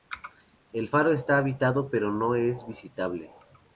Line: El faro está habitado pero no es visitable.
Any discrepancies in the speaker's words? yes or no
no